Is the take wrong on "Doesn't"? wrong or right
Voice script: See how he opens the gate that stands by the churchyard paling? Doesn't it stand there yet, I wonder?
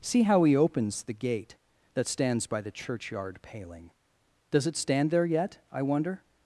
wrong